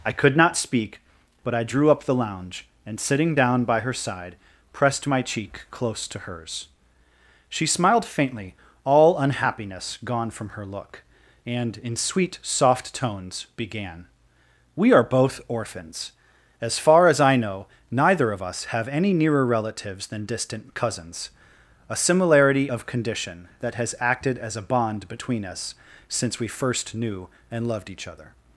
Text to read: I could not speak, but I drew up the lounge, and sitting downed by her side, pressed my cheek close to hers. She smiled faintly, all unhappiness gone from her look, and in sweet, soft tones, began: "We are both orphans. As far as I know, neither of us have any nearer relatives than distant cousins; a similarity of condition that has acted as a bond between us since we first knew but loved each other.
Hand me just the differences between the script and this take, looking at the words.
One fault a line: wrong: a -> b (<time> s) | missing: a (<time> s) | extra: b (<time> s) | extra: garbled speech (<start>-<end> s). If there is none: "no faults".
wrong: downed -> down (3.3 s)
wrong: but -> and (27.5 s)